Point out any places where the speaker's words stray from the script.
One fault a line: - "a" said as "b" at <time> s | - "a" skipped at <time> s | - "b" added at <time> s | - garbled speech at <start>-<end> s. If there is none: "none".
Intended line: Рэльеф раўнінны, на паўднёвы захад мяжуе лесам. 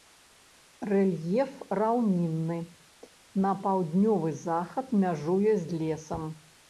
- "з" added at 5.7 s